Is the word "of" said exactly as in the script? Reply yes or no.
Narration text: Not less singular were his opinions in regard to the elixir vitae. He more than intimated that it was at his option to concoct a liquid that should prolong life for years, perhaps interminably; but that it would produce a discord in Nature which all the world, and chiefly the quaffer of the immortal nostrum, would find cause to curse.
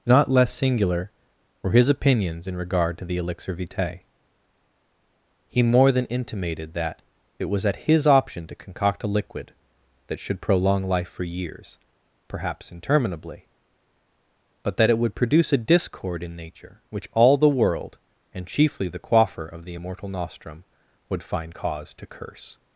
yes